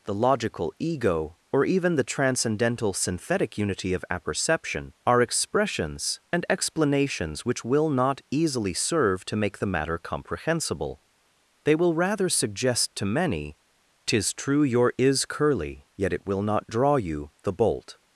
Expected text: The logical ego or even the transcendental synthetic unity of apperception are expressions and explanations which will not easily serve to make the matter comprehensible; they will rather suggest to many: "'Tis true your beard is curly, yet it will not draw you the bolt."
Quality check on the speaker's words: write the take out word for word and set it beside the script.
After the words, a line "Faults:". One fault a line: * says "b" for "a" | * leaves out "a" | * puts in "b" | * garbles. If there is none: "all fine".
The logical ego or even the transcendental synthetic unity of apperception are expressions and explanations which will not easily serve to make the matter comprehensible; they will rather suggest to many: "'Tis true your is curly, yet it will not draw you the bolt."
Faults:
* leaves out "beard"